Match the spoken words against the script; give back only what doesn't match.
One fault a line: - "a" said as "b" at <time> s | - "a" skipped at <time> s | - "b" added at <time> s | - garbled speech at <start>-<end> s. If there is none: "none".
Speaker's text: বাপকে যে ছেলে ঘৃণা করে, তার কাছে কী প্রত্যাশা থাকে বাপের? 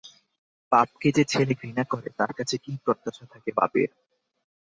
none